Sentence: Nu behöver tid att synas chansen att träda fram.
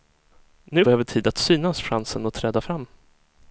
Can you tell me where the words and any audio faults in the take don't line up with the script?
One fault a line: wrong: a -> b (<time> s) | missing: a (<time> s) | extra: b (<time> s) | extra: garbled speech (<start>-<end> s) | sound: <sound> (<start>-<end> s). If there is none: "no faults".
no faults